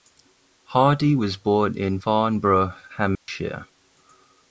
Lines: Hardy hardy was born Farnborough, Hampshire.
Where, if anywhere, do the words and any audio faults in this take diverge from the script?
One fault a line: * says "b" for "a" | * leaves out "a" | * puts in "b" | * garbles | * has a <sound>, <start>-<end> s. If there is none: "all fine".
* leaves out "hardy"
* puts in "in"
* has a dropout, 3.2-3.3 s